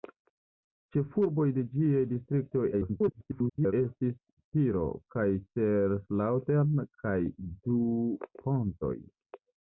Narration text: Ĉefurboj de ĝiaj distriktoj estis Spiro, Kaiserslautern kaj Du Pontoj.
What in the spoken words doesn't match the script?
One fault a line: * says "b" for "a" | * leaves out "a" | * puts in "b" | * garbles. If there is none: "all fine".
* garbles